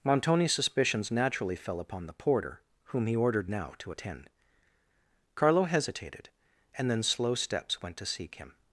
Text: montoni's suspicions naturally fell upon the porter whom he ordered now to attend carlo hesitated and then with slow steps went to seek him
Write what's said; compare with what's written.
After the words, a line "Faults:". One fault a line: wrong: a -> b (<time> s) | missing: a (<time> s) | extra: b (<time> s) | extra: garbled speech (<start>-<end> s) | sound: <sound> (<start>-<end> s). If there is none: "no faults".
montoni's suspicions naturally fell upon the porter whom he ordered now to attend carlo hesitated and then slow steps went to seek him
Faults:
missing: with (7.0 s)